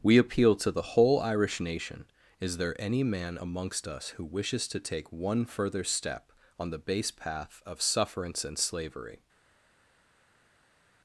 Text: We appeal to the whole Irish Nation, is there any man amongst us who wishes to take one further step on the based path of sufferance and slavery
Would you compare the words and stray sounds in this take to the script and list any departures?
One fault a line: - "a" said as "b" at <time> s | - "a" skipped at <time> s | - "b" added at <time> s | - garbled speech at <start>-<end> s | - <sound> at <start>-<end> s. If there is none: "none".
- "based" said as "base" at 6.8 s